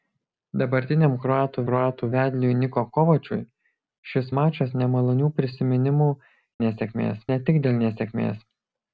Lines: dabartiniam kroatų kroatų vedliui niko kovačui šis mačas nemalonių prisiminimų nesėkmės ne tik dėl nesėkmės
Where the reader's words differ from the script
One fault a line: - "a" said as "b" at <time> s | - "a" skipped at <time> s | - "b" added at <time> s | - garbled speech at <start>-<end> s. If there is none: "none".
none